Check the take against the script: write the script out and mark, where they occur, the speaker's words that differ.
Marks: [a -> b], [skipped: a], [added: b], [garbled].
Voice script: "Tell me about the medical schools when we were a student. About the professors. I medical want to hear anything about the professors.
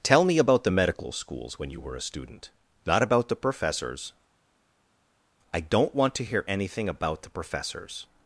"Tell me about the medical schools when [we -> you] were a student. [added: Not] About the professors. I [medical -> don't] want to hear anything about the professors.